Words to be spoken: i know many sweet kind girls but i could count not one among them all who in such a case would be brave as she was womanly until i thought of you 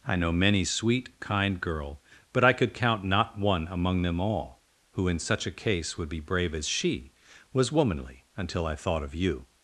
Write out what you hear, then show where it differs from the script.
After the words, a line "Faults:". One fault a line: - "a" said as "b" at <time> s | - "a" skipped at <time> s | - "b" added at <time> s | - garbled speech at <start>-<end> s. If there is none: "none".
i know many sweet kind girl but i could count not one among them all who in such a case would be brave as she was womanly until i thought of you
Faults:
- "girls" said as "girl" at 1.6 s